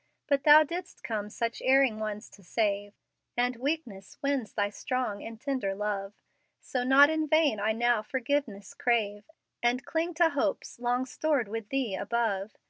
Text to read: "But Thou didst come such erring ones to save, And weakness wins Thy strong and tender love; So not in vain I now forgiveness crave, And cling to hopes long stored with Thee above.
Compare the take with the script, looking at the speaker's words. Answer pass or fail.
pass